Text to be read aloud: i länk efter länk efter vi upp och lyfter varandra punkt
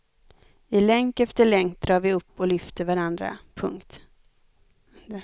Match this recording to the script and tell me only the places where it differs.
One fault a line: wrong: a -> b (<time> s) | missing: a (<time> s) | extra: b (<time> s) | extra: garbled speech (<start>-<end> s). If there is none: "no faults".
wrong: efter -> drar (1.8 s)